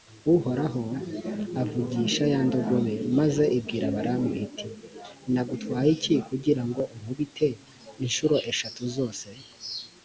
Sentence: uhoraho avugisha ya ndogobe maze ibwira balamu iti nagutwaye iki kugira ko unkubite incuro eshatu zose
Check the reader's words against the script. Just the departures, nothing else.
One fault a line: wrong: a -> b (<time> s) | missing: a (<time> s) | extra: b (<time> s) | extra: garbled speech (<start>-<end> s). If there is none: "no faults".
wrong: ko -> ngo (6.7 s)